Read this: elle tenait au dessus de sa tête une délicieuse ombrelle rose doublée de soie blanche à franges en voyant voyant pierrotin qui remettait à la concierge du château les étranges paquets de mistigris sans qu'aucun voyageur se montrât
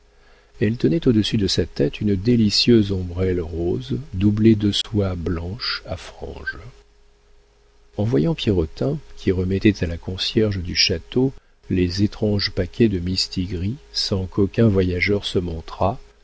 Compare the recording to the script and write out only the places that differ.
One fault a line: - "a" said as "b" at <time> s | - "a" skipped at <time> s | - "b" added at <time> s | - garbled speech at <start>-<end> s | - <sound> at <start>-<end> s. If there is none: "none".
- dropout at 4.8-4.8 s
- "voyant" skipped at 8.3 s